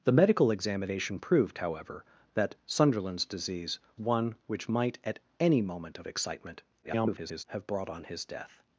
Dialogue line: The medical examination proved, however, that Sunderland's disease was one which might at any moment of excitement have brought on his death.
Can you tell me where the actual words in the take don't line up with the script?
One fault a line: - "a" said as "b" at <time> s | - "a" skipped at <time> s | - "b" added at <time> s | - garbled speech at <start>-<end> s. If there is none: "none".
- "was" skipped at 3.8 s
- garbled speech at 6.8-7.4 s